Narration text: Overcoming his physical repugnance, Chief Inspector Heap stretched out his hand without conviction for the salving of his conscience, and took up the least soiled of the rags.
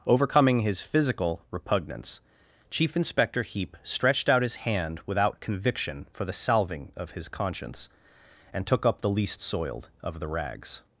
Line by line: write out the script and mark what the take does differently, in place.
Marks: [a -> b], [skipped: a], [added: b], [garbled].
Overcoming his physical repugnance, Chief Inspector Heap stretched out his hand without conviction for the salving of his conscience, and took up the least soiled of the rags.